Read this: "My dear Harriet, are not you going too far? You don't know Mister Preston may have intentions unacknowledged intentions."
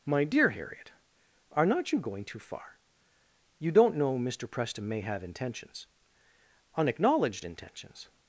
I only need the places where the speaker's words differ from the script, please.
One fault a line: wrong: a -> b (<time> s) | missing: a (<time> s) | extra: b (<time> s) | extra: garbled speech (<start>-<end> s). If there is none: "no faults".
no faults